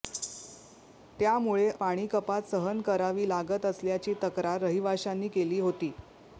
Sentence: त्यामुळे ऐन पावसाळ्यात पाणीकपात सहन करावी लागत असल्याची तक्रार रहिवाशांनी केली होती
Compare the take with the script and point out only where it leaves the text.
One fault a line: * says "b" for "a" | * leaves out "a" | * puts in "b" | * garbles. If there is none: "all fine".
* leaves out "ऐन पावसाळ्यात"